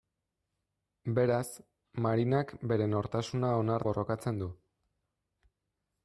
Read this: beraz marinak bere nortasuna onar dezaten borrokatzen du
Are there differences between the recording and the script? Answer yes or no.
yes